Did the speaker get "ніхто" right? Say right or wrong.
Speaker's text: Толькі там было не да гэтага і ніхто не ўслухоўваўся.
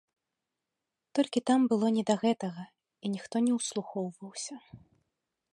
right